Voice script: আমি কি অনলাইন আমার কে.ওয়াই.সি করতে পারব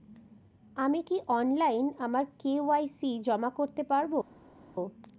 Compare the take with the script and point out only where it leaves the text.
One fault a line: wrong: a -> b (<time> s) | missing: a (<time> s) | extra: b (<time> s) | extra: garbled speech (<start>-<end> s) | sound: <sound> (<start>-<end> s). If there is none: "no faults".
extra: জমা (3.3 s)